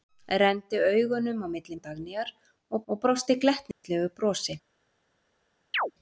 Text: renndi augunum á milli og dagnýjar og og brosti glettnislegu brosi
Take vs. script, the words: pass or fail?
pass